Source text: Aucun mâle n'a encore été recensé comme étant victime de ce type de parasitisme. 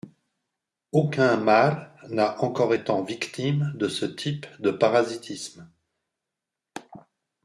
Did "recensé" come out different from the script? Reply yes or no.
yes